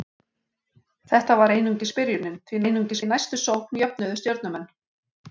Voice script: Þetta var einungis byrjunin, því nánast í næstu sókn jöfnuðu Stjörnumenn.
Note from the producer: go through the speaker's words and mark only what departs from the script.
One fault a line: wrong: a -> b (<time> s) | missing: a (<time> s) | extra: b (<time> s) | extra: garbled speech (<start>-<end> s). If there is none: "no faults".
wrong: nánast -> einungis (2.6 s)